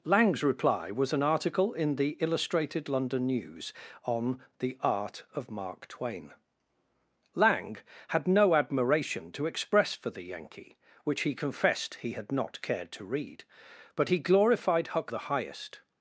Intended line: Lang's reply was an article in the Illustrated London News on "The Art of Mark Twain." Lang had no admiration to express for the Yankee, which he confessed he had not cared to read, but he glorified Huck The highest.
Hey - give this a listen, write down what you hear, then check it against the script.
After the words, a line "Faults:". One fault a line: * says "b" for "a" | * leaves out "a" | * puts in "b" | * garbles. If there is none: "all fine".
Lang's reply was an article in the Illustrated London News on "The Art of Mark Twain." Lang had no admiration to express for the Yankee, which he confessed he had not cared to read, but he glorified Huck The highest.
Faults:
all fine